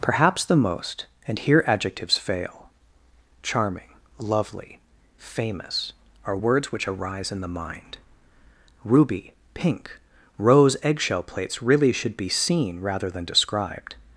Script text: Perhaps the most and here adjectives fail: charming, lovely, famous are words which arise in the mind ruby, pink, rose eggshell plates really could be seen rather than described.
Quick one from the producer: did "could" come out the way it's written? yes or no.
no